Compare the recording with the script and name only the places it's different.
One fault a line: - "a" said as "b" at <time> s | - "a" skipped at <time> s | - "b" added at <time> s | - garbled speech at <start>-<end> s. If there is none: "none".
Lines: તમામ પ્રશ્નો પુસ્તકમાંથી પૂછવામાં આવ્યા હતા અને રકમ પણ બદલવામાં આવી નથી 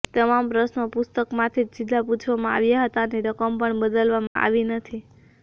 - "જ સીધા" added at 1.7 s